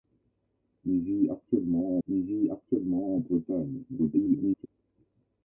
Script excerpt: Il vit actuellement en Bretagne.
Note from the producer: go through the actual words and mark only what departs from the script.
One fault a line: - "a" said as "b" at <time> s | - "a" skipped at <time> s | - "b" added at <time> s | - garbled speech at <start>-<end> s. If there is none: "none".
- "il vit actuellement" added at 2.1 s
- garbled speech at 3.9-4.7 s